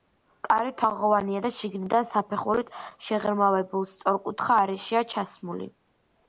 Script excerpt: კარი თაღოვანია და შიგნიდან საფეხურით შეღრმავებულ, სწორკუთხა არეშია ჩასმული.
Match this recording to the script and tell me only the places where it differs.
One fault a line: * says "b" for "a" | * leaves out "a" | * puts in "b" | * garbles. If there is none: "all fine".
all fine